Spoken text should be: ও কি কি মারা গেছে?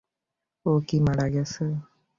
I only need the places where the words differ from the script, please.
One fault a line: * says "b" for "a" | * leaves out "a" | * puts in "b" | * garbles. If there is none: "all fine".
* leaves out "কি"